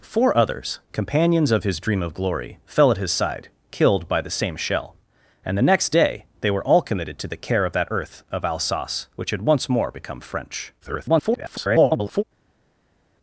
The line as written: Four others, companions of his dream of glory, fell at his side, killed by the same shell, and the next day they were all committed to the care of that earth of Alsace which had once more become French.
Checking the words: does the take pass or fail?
fail